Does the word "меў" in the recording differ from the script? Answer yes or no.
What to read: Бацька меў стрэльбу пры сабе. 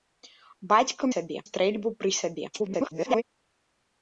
yes